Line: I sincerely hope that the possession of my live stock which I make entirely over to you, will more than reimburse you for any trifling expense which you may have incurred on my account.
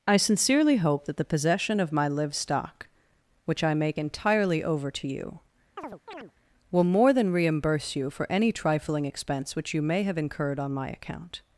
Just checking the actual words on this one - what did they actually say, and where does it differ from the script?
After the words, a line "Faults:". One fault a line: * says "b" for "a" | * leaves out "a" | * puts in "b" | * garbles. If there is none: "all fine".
I sincerely hope that the possession of my live stock which I make entirely over to you, will more than reimburse you for any trifling expense which you may have incurred on my account.
Faults:
all fine